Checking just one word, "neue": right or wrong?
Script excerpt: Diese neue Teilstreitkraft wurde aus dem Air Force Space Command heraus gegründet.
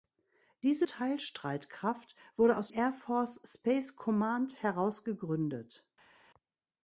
wrong